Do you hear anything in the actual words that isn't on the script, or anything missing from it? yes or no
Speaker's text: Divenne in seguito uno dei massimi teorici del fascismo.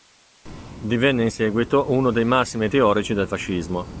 no